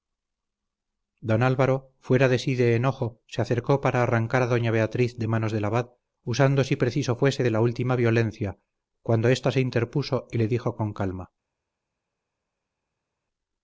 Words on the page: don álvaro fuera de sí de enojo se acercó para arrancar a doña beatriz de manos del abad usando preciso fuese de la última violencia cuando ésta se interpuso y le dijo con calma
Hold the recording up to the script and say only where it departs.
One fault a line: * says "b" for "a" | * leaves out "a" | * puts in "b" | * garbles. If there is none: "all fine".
* puts in "si"